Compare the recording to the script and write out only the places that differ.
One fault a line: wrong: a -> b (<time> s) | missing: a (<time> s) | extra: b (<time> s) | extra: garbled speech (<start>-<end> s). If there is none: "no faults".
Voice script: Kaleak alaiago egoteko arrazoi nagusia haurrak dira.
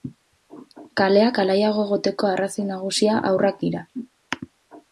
no faults